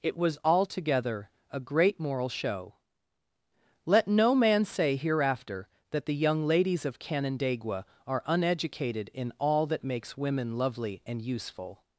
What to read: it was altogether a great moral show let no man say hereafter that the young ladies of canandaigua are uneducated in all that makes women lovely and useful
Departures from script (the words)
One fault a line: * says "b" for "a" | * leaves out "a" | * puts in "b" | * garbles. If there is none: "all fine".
all fine